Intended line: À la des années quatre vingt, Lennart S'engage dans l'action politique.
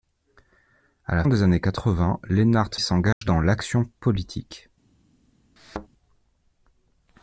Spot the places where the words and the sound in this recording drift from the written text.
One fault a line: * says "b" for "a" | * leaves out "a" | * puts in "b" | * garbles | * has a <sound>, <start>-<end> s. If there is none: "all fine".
* has a dropout, 3.1-3.2 s
* has a thud, 5.6-5.9 s